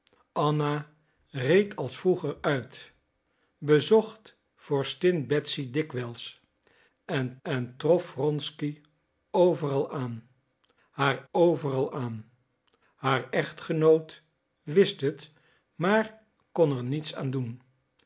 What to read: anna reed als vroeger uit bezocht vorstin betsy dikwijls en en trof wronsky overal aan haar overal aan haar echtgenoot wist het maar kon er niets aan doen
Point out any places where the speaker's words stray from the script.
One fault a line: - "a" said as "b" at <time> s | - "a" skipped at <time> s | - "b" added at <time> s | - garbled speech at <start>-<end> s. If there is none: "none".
none